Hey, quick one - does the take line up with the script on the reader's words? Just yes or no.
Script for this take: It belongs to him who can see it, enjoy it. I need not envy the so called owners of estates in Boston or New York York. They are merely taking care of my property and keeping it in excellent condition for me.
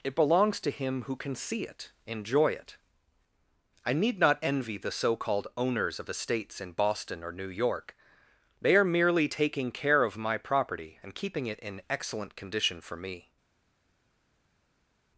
no